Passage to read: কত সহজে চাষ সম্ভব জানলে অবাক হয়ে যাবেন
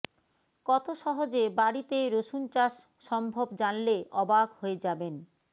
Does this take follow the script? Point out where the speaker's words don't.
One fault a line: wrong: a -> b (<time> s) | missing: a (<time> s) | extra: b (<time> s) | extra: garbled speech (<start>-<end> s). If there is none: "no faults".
extra: বাড়িতে রসুন (1.6 s)